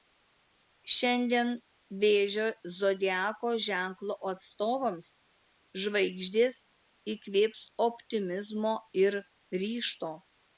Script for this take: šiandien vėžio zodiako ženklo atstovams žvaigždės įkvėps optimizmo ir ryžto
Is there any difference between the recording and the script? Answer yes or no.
no